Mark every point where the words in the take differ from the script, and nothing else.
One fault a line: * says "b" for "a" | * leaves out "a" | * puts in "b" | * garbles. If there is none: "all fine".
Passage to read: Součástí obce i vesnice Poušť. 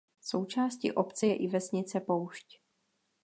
* puts in "je"